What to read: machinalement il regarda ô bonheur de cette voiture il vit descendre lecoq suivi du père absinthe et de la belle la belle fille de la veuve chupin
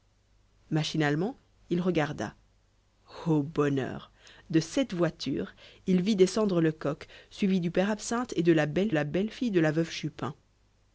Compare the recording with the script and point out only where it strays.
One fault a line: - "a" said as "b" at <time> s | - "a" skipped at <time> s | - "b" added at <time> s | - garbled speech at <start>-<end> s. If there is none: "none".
none